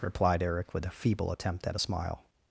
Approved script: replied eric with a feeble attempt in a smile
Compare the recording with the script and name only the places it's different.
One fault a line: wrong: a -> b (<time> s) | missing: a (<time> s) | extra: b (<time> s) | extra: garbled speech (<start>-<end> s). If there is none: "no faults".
wrong: in -> at (1.7 s)